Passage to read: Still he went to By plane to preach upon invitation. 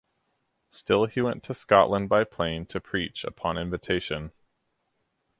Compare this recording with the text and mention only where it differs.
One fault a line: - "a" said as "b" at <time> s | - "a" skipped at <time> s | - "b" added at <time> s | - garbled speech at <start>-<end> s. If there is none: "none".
- "Scotland" added at 1.5 s